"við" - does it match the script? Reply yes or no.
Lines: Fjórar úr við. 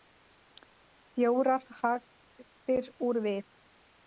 yes